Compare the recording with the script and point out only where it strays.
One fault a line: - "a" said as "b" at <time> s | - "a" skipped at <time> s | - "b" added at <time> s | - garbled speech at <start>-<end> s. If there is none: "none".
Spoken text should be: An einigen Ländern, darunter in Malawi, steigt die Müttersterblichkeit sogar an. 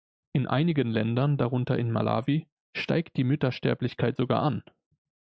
- "An" said as "In" at 0.3 s